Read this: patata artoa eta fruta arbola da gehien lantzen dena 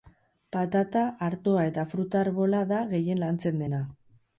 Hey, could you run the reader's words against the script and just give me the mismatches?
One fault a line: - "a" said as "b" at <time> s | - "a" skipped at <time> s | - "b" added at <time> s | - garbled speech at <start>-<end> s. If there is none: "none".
none